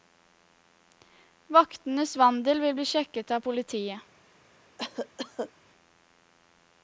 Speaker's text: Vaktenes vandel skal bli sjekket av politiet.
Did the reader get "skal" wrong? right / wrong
wrong